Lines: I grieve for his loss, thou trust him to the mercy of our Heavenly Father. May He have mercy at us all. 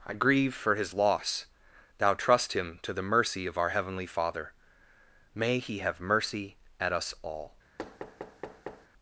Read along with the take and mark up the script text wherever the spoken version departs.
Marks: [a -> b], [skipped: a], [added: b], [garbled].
I grieve for his loss, thou trust him to the mercy of our Heavenly Father. May He have mercy at us all.